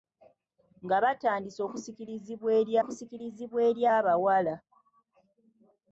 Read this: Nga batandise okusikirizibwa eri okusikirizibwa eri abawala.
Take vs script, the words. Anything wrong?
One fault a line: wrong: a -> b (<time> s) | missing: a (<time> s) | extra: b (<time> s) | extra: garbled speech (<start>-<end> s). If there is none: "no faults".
no faults